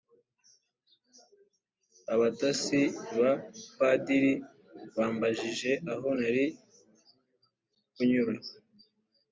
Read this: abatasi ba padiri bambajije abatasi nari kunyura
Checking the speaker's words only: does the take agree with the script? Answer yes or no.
no